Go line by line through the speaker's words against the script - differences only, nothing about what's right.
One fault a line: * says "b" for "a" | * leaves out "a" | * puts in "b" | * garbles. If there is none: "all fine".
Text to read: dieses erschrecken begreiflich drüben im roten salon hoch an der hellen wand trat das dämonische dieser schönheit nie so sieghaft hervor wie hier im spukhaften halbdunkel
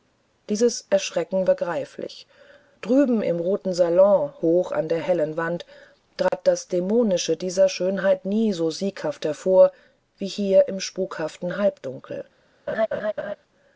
all fine